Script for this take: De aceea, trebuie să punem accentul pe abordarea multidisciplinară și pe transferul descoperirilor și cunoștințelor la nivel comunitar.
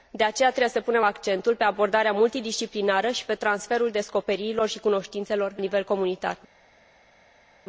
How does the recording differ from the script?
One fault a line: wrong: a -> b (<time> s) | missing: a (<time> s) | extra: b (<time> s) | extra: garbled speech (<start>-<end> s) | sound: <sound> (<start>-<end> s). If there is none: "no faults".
missing: la (5.5 s)